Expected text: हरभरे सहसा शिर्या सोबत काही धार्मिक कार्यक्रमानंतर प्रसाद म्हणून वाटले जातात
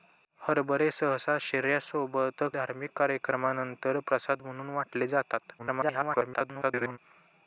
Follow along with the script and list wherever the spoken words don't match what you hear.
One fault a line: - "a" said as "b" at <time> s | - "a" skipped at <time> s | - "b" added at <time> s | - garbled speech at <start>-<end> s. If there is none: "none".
- "काही" skipped at 2.4 s
- garbled speech at 5.6-7.0 s